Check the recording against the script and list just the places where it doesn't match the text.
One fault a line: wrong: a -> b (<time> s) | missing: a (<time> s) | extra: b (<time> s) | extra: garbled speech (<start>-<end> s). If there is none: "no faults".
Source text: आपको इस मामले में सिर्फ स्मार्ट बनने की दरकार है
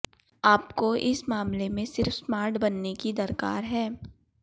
no faults